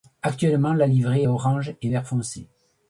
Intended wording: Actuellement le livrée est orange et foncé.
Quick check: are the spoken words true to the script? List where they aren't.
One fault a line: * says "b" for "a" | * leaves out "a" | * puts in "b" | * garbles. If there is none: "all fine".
* says "la" for "le"
* puts in "vert"